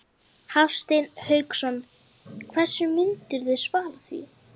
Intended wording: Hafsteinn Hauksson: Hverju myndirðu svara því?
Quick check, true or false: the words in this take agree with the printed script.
true